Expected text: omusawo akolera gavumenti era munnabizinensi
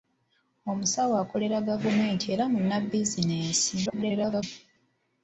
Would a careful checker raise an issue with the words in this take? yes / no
yes